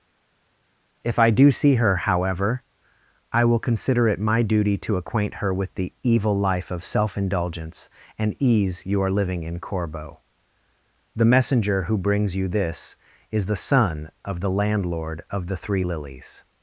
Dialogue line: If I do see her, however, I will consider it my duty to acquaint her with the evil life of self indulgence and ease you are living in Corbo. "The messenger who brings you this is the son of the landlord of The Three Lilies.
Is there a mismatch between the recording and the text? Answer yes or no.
no